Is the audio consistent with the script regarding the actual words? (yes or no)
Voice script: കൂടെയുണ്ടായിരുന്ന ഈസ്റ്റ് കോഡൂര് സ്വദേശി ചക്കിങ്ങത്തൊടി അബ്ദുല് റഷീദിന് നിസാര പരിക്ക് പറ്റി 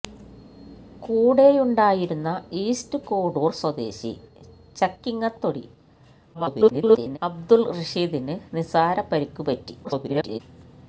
no